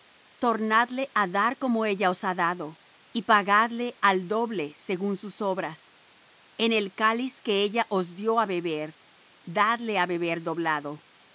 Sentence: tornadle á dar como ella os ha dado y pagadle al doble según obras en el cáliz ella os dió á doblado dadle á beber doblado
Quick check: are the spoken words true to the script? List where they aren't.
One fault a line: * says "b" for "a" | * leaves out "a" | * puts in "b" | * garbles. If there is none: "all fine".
* puts in "sus"
* puts in "que"
* says "beber" for "doblado"